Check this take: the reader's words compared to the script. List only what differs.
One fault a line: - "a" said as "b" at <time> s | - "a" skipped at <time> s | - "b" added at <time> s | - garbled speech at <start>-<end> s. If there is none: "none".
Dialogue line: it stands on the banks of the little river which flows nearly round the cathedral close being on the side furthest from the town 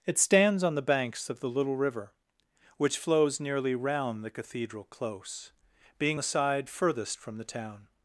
- "on" skipped at 6.2 s